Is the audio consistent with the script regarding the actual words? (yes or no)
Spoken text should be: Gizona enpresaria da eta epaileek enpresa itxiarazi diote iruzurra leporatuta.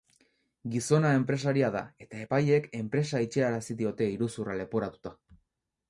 yes